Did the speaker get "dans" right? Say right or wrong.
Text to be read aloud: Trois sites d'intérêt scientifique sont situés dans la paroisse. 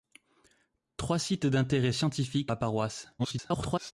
wrong